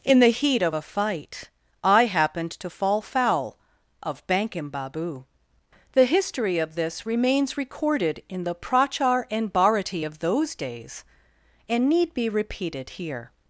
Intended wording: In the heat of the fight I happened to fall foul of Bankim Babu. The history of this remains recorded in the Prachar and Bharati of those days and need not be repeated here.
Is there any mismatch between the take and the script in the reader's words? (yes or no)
yes